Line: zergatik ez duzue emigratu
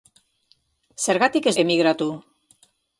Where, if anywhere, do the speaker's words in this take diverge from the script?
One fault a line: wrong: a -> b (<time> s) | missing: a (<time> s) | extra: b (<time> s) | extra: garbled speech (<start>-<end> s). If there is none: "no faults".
missing: duzue (1.6 s)